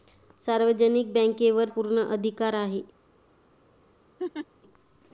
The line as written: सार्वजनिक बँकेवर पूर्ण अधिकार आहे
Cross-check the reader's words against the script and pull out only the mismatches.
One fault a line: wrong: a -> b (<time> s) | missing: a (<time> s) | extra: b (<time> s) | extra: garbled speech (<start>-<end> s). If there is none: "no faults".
no faults